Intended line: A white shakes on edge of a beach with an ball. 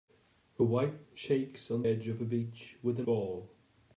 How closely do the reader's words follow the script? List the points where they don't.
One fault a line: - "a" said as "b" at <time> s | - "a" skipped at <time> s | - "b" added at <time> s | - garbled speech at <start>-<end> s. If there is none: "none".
none